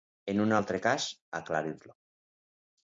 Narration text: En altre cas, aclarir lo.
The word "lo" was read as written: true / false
true